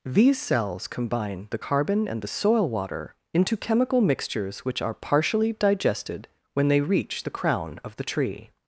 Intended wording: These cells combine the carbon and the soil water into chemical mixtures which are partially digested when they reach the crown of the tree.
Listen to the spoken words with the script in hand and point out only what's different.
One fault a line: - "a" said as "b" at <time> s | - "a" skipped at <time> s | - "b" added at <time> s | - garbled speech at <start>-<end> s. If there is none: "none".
none